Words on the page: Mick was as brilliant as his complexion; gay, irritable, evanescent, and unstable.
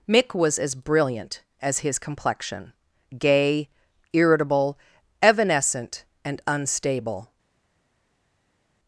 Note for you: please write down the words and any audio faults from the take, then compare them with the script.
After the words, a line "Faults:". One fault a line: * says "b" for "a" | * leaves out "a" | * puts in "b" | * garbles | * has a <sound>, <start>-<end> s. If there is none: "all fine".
Mick was as brilliant as his complexion; gay, irritable, evanescent, and unstable.
Faults:
all fine